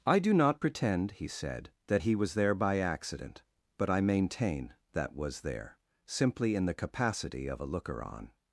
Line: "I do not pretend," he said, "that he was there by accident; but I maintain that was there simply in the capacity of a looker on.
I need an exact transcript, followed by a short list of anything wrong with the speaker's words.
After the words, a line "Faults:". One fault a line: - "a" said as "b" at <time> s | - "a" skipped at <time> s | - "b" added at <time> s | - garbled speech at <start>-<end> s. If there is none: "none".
"I do not pretend," he said, "that he was there by accident; but I maintain that was there simply in the capacity of a looker on.
Faults:
none